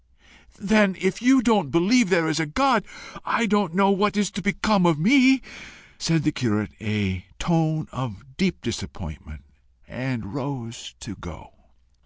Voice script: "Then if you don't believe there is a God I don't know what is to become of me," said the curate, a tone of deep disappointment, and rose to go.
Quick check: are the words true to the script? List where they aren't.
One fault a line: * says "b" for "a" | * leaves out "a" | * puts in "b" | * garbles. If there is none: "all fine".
all fine